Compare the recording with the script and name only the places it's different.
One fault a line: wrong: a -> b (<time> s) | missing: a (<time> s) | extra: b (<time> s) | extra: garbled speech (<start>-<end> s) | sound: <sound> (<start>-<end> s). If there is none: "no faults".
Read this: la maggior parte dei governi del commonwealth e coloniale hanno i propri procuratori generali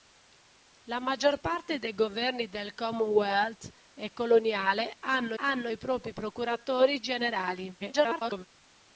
extra: hanno (5.4 s)
extra: garbled speech (7.8-8.5 s)